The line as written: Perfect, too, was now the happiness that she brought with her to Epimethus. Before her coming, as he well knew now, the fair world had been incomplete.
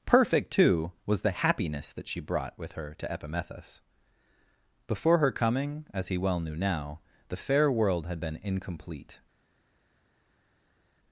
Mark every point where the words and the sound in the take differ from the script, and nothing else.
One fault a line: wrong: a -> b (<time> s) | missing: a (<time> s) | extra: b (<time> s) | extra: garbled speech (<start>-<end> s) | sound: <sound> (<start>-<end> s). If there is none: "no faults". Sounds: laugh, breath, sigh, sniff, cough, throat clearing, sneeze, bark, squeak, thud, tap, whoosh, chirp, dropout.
missing: now (1.2 s)